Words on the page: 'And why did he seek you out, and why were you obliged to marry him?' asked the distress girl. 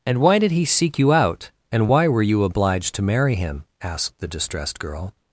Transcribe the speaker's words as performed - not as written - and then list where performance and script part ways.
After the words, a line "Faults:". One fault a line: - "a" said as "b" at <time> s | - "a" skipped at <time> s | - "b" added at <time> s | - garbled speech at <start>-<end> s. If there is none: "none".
'And why did he seek you out, and why were you obliged to marry him?' asked the distressed girl.
Faults:
- "distress" said as "distressed" at 4.3 s